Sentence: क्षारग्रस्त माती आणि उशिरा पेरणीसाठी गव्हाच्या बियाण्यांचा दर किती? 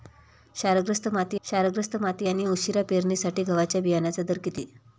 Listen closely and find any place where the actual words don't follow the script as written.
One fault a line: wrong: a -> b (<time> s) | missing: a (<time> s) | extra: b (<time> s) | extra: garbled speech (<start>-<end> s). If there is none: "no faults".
extra: क्षारग्रस्त माती (1.4 s)